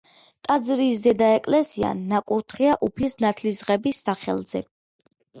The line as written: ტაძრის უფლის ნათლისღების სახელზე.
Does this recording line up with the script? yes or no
no